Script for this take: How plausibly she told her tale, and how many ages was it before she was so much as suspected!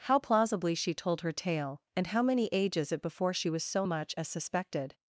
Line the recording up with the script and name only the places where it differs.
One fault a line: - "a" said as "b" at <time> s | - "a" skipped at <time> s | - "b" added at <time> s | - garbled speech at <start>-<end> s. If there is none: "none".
- "was" skipped at 2.9 s